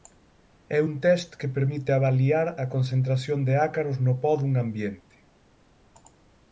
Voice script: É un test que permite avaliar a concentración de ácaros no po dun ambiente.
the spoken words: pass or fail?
pass